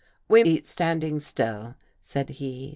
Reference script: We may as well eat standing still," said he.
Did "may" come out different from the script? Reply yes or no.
yes